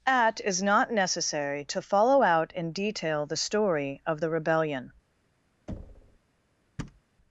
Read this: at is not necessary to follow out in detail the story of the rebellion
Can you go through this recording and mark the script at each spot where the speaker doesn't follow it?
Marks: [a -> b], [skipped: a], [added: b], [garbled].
at is not necessary to follow out in detail the story of the rebellion